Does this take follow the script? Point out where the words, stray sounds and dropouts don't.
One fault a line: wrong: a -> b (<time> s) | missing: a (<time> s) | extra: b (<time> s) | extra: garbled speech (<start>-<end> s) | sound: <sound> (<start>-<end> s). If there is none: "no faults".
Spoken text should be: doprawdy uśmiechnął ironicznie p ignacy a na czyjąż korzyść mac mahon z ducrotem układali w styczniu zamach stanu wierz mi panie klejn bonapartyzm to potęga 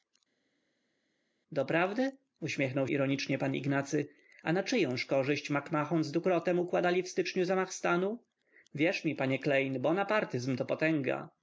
no faults